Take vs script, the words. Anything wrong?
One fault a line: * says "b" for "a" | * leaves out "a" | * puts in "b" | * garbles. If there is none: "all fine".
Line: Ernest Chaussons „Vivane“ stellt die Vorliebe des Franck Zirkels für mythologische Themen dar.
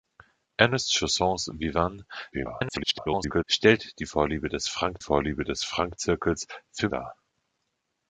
* garbles
* puts in "Vorliebe des Franck"
* leaves out "mythologische Themen"